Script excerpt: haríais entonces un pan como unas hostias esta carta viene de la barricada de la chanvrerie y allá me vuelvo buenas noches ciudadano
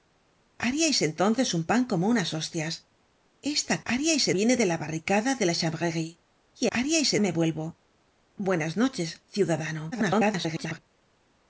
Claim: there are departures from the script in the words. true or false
true